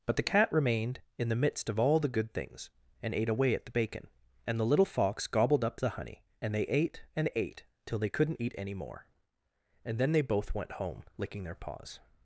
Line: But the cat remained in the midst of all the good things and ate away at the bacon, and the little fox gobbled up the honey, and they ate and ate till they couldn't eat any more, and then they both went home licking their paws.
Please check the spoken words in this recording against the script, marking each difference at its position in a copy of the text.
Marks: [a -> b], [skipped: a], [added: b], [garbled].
But the cat remained in the midst of all the good things and ate away at the bacon, and the little fox gobbled up the honey, and they ate and ate till they couldn't eat any more, and then they both went home licking their paws.